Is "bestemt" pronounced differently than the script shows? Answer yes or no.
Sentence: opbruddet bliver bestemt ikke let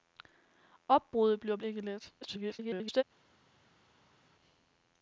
yes